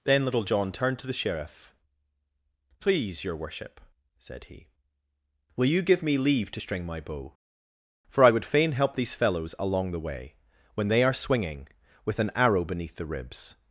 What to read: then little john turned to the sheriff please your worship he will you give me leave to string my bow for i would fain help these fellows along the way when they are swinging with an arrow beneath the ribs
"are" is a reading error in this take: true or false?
false